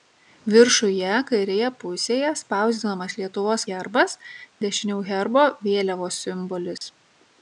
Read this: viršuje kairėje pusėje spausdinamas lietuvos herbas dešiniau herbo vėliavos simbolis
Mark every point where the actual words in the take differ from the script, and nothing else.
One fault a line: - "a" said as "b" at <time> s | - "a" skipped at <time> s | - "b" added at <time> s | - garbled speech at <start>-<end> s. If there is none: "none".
none